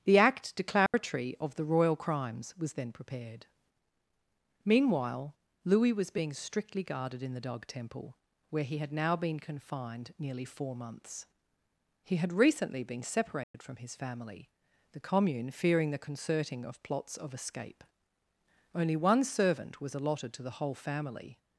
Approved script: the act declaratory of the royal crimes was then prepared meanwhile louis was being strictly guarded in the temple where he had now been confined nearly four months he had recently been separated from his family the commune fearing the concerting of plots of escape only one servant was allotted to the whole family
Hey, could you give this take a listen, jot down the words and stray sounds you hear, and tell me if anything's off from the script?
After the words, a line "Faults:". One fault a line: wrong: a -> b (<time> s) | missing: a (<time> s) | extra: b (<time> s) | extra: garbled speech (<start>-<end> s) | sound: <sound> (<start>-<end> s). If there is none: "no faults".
the act declaratory of the royal crimes was then prepared meanwhile louis was being strictly guarded in the dog temple where he had now been confined nearly four months he had recently been separated from his family the commune fearing the concerting of plots of escape only one servant was allotted to the whole family
Faults:
sound: dropout (0.9-0.9 s)
extra: dog (7.4 s)
sound: dropout (13.4-13.5 s)